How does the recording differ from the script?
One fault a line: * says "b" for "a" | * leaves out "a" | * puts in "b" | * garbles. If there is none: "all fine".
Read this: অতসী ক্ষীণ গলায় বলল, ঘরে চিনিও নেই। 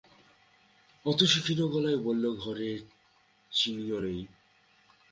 all fine